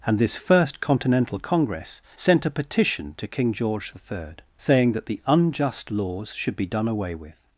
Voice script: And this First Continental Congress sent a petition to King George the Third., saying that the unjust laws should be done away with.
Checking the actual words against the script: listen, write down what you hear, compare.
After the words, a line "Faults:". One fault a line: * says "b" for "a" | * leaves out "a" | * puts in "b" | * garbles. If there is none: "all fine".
And this First Continental Congress sent a petition to King George the Third., saying that the unjust laws should be done away with.
Faults:
all fine